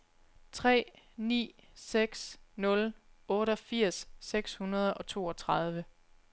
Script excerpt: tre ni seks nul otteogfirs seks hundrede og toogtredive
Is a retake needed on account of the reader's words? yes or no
no